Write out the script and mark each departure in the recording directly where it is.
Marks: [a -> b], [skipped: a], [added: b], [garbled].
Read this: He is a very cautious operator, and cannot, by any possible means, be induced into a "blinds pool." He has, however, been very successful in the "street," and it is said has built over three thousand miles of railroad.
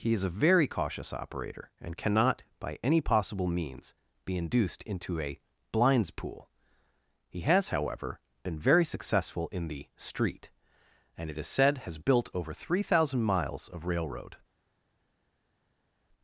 He is a very cautious operator, and cannot, by any possible means, be induced into a "blinds pool." He has, however, been very successful in the "street," and it is said has built over three thousand miles of railroad.